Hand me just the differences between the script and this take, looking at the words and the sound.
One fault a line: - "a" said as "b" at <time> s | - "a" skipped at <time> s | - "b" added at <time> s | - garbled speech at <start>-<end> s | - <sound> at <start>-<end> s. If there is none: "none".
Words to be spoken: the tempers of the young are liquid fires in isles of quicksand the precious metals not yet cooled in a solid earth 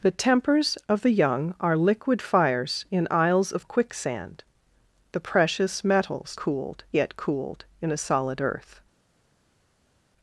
- "not" said as "cooled" at 6.3 s